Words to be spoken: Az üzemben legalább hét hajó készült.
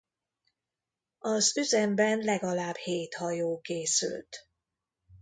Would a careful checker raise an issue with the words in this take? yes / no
no